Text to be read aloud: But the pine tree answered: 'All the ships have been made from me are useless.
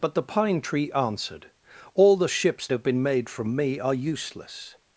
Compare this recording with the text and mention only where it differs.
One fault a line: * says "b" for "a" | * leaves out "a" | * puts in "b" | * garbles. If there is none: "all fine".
all fine